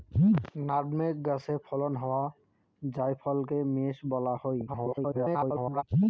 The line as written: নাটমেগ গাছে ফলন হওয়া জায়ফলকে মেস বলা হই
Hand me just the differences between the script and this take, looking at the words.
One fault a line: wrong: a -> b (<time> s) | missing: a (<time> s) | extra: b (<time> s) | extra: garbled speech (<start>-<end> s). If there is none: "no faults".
extra: garbled speech (4.7-5.8 s)